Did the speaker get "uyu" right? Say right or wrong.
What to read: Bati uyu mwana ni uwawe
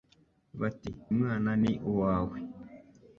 wrong